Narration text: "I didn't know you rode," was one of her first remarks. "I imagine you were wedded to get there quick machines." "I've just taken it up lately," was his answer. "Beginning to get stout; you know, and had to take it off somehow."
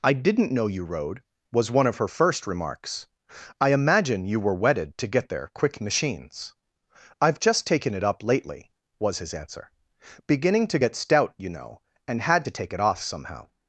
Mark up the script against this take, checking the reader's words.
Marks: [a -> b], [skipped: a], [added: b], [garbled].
"I didn't know you rode," was one of her first remarks. "I imagine you were wedded to get there quick machines." "I've just taken it up lately," was his answer. "Beginning to get stout; you know, and had to take it off somehow."